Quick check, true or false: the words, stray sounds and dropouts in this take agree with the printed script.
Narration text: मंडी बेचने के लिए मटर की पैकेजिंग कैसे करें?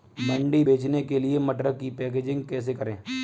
true